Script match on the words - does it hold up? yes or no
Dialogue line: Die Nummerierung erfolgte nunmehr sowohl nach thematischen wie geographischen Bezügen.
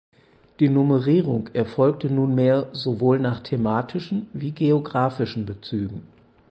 yes